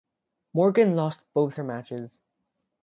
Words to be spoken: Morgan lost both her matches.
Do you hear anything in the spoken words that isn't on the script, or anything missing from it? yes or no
no